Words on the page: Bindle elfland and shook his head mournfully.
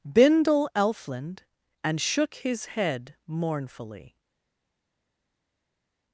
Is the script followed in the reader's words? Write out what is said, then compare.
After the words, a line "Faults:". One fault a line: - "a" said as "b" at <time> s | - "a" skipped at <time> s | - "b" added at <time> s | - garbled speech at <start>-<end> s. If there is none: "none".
Bindle elfland and shook his head mournfully.
Faults:
none